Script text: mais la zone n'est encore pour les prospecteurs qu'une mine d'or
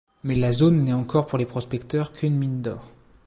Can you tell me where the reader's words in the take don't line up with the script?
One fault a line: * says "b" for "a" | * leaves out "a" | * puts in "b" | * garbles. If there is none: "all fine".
all fine